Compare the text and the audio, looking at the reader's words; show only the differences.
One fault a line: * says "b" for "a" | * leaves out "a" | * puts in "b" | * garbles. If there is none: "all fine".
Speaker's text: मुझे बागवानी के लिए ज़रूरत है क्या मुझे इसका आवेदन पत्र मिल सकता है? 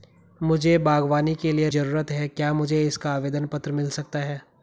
all fine